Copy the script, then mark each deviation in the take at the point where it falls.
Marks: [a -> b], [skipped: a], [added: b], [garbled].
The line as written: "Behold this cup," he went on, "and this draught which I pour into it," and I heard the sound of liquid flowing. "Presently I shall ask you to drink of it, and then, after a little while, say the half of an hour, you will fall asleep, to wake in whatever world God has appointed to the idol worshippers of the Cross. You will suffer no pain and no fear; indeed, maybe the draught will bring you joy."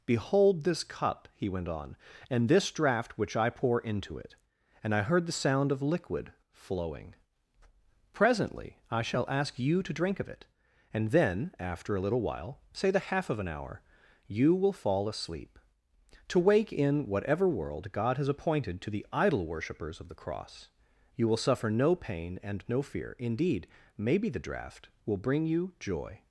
"Behold this cup," he went on, "and this draught which I pour into it," and I heard the sound of liquid flowing. "Presently I shall ask you to drink of it, and then, after a little while, say the half of an hour, you will fall asleep, to wake in whatever world God has appointed to the idol worshippers of the Cross. You will suffer no pain and no fear; indeed, maybe the draught will bring you joy."